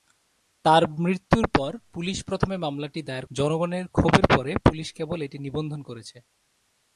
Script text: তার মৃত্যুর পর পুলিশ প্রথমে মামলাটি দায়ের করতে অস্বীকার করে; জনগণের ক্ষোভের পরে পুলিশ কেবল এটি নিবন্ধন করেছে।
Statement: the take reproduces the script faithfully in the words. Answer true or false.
false